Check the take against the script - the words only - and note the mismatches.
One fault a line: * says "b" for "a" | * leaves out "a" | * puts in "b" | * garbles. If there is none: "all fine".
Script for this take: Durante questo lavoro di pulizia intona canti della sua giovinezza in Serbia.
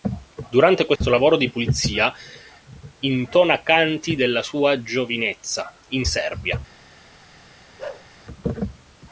all fine